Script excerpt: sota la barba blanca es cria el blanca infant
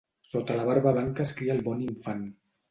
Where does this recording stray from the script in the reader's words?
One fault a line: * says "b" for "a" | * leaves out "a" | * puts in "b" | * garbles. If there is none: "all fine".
* says "bon" for "blanca"